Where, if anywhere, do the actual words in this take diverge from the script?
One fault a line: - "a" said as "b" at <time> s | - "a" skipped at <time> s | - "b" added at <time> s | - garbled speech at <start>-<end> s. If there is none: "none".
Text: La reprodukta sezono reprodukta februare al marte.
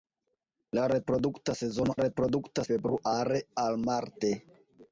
none